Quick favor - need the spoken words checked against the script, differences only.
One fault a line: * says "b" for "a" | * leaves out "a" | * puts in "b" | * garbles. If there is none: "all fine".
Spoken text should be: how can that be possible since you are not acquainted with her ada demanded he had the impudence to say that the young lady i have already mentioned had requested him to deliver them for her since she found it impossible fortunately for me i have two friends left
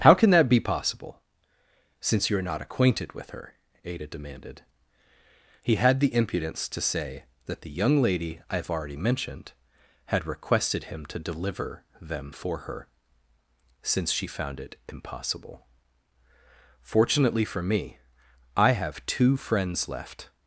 all fine